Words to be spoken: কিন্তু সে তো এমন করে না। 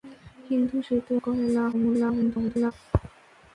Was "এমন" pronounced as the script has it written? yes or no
no